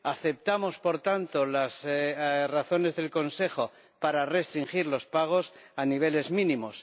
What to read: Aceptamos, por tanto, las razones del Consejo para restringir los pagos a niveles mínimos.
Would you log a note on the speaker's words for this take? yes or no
no